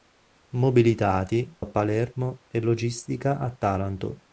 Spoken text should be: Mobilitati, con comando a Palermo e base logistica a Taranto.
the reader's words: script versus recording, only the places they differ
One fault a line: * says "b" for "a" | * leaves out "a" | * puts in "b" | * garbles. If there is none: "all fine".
* leaves out "con comando"
* leaves out "base"